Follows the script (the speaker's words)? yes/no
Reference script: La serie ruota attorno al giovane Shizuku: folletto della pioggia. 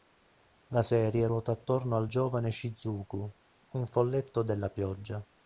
no